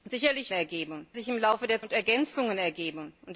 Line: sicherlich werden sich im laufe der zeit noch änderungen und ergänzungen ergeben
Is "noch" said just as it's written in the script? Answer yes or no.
no